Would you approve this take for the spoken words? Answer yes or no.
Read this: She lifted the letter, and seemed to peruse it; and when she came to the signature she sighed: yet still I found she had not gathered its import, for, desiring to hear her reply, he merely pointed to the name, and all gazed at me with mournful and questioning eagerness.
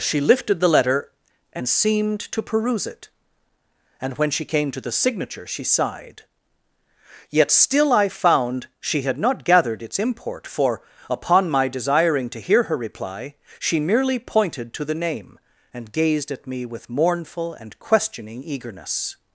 no